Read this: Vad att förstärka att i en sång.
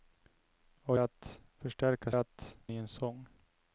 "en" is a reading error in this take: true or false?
false